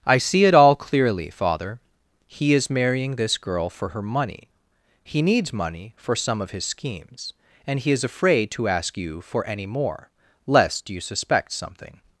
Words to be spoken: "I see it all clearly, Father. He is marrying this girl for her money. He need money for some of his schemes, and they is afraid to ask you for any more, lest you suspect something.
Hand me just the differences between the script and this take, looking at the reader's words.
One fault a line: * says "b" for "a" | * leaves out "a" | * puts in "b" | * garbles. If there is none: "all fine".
* says "needs" for "need"
* says "he" for "they"